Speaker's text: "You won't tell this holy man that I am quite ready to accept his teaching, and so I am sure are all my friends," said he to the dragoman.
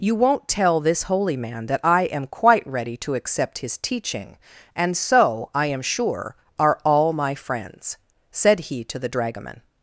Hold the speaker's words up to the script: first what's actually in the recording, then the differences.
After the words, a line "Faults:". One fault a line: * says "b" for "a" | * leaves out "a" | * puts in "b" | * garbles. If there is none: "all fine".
"You won't tell this holy man that I am quite ready to accept his teaching, and so I am sure are all my friends," said he to the dragoman.
Faults:
all fine